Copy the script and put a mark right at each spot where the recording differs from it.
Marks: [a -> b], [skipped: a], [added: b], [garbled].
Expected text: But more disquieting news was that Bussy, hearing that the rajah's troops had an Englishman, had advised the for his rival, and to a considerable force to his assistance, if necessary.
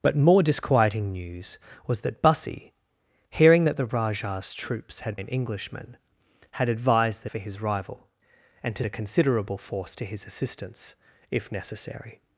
But more disquieting news was that Bussy, hearing that the rajah's troops had an Englishman, had advised the for his rival, and to a considerable force to his assistance, if necessary.